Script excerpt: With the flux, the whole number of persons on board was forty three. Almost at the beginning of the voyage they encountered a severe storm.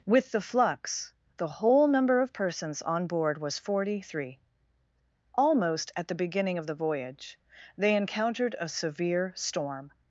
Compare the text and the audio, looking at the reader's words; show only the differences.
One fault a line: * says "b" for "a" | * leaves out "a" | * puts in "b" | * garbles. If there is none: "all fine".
all fine